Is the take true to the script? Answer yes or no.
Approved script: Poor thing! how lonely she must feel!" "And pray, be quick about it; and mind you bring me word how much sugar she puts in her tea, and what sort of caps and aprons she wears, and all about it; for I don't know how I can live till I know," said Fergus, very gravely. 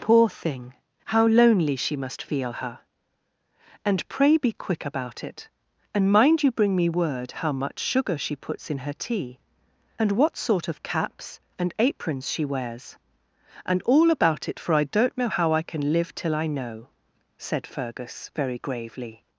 no